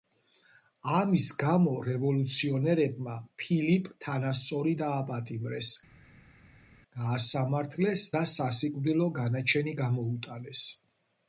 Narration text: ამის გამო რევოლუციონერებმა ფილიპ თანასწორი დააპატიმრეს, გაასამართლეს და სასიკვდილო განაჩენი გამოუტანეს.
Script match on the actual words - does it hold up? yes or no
yes